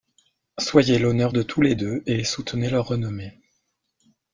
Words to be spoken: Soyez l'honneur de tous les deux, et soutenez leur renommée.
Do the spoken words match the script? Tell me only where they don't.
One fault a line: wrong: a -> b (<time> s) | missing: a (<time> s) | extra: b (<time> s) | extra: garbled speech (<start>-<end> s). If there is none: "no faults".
no faults